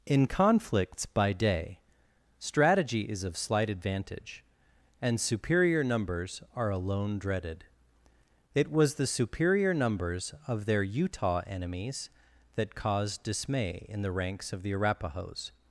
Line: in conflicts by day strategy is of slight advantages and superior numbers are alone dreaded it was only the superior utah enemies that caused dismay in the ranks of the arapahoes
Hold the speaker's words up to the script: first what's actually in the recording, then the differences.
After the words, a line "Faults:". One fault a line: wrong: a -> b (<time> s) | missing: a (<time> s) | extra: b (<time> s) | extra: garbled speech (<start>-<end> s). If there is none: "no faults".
in conflicts by day strategy is of slight advantage and superior numbers are alone dreaded it was the superior numbers of their utah enemies that caused dismay in the ranks of the arapahoes
Faults:
wrong: advantages -> advantage (3.7 s)
missing: only (8.9 s)
extra: numbers of their (9.8 s)